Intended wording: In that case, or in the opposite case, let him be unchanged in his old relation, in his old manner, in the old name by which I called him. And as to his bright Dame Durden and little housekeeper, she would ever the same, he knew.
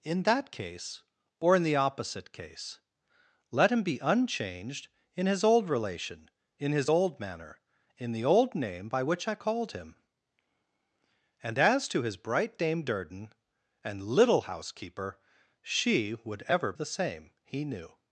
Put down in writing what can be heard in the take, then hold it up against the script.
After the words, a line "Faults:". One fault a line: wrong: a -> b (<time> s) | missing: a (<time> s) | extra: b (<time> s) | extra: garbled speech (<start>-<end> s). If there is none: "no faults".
In that case, or in the opposite case, let him be unchanged in his old relation, in his old manner, in the old name by which I called him. And as to his bright Dame Durden and little housekeeper, she would ever the same, he knew.
Faults:
no faults